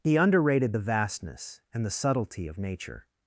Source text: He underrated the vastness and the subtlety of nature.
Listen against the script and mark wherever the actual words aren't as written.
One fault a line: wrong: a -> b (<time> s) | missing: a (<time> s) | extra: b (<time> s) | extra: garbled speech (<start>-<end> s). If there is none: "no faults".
no faults